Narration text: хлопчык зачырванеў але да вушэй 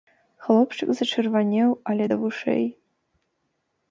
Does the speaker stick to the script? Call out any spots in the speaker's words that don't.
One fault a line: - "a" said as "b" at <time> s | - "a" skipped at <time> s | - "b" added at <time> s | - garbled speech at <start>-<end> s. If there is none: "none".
none